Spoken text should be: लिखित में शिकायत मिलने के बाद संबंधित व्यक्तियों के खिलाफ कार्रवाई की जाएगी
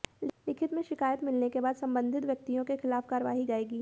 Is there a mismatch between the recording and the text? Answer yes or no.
yes